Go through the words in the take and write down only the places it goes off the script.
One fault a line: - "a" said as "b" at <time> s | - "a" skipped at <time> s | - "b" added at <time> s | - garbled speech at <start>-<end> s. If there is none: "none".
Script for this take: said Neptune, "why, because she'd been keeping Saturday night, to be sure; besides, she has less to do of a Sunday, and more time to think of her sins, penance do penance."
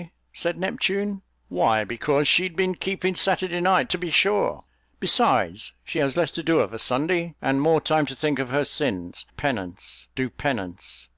none